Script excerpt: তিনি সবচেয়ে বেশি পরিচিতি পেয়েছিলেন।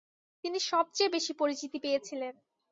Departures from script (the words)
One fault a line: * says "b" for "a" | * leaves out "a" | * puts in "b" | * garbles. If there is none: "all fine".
all fine